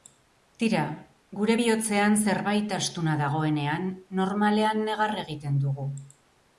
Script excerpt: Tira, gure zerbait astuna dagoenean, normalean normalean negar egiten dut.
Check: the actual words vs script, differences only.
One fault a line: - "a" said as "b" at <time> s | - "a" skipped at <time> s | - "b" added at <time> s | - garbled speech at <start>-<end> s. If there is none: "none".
- "bihotzean" added at 1.6 s
- "normalean" skipped at 4.9 s
- "dut" said as "dugu" at 5.7 s